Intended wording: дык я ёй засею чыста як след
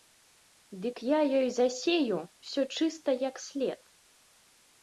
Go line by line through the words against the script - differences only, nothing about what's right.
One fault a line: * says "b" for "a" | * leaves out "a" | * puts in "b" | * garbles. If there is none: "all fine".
* puts in "ўсё"